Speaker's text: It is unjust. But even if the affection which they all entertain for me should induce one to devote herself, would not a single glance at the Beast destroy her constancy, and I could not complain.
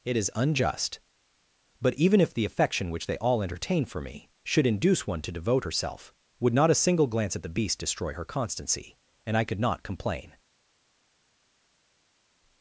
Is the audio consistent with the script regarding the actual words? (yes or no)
yes